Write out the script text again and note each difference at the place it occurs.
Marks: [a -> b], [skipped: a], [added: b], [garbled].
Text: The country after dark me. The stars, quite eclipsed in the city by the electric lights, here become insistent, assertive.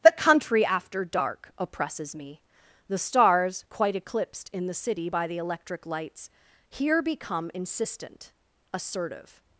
The country after dark [added: oppresses] me. The stars, quite eclipsed in the city by the electric lights, here become insistent, assertive.